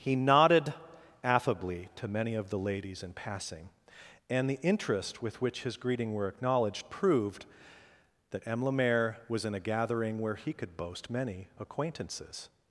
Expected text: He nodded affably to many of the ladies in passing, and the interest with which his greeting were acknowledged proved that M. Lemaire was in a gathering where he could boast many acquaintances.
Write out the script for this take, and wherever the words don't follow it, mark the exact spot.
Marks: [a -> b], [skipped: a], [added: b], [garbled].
He nodded affably to many of the ladies in passing, and the interest with which his greeting were acknowledged proved that M. Lemaire was in a gathering where he could boast many acquaintances.